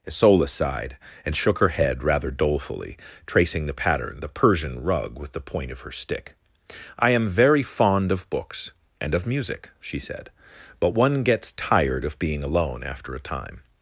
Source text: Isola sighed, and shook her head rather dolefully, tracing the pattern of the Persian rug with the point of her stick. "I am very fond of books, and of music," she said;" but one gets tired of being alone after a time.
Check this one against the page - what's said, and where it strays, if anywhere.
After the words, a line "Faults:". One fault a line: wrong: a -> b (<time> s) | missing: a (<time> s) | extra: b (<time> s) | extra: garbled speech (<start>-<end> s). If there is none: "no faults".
Isola sighed, and shook her head rather dolefully, tracing the pattern the Persian rug with the point of her stick. "I am very fond of books, and of music," she said;" but one gets tired of being alone after a time.
Faults:
missing: of (4.2 s)